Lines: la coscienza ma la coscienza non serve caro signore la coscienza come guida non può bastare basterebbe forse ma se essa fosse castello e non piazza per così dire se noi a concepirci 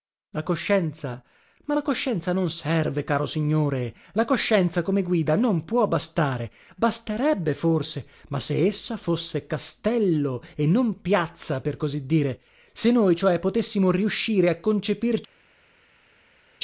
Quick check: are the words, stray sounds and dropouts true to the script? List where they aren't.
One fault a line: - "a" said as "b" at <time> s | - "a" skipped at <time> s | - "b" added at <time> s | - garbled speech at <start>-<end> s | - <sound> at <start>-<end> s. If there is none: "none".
- "cioè potessimo riuscire" added at 13.2 s